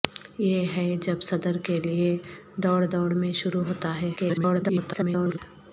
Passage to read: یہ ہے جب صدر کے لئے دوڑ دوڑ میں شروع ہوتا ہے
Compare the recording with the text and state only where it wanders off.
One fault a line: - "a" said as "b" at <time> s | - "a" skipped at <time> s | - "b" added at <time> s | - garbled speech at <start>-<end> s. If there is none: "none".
- garbled speech at 4.2-5.4 s